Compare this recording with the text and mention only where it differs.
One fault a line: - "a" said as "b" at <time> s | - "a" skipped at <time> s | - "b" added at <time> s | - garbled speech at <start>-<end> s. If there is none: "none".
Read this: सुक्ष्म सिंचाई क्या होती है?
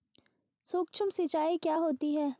none